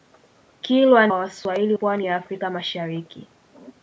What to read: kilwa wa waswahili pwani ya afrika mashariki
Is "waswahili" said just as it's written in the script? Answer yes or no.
yes